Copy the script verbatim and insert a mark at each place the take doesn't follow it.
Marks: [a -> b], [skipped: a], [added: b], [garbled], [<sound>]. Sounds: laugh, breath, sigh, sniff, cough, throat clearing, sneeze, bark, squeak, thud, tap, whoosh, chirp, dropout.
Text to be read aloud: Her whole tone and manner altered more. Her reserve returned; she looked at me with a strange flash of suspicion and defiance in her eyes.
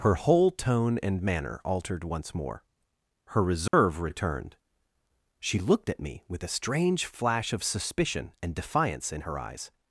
Her whole tone and manner altered [added: once] more. Her reserve [dropout] returned; she looked at me with a strange flash of suspicion and defiance in her eyes.